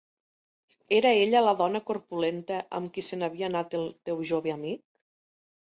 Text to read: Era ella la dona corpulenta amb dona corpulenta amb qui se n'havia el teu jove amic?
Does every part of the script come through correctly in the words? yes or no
no